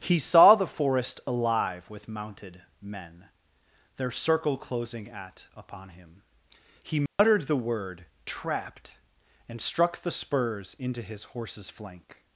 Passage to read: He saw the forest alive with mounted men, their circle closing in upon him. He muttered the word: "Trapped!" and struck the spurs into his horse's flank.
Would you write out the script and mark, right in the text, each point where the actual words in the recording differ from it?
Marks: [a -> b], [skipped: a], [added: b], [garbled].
He saw the forest alive with mounted men, their circle closing [in -> at] upon him. He muttered the word: "Trapped!" and struck the spurs into his horse's flank.